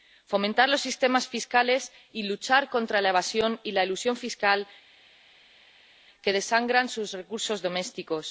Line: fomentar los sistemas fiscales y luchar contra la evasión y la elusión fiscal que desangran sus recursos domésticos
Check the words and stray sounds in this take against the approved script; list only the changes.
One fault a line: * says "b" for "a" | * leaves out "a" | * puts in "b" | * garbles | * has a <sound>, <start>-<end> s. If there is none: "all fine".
all fine